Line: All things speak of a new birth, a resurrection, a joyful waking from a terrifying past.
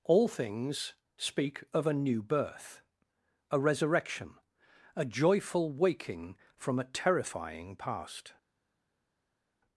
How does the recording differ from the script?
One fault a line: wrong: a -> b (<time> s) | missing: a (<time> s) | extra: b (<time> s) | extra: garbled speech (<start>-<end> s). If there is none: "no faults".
no faults